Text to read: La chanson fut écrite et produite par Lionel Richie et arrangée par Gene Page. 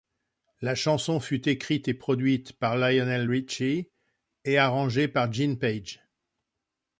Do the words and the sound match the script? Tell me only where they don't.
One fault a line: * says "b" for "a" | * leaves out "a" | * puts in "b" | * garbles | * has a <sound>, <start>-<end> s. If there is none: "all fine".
all fine